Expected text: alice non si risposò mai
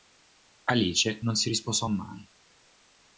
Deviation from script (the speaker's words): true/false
false